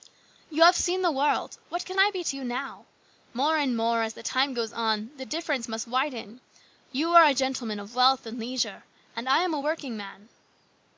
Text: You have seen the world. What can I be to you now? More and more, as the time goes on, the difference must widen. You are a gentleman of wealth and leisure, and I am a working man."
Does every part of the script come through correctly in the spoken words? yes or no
yes